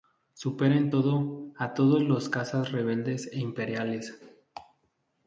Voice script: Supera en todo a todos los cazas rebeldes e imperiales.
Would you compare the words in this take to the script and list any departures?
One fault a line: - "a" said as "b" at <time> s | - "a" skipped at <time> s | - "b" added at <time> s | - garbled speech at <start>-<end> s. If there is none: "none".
none